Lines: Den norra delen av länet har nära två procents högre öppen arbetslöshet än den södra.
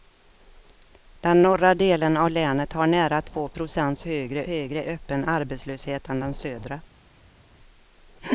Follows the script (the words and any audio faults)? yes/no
no